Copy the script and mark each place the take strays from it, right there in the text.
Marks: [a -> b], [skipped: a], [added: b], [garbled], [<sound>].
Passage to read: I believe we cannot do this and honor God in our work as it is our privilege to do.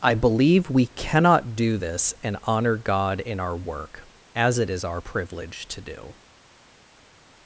I believe we cannot do this and honor God in our work as it is our privilege to do.